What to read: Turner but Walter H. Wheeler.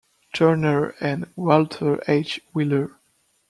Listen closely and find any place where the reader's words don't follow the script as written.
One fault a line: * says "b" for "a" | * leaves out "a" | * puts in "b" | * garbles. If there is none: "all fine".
* says "and" for "but"